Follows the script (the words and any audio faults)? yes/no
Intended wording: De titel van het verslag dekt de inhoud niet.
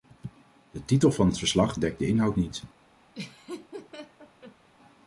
no